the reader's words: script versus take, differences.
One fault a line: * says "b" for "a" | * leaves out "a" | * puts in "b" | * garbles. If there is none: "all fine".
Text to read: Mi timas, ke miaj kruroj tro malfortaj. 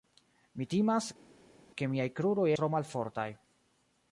all fine